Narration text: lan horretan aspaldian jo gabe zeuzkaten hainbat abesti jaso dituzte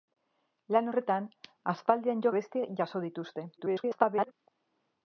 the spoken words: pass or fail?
fail